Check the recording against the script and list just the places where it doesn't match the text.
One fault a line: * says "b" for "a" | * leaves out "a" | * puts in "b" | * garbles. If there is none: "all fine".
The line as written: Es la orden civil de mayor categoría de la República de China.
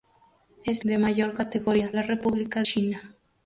* leaves out "la orden civil"
* leaves out "de"
* leaves out "de"